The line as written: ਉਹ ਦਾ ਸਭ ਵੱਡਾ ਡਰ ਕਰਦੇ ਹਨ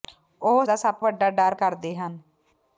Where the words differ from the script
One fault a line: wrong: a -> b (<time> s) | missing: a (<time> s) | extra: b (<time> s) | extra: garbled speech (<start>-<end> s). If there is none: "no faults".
no faults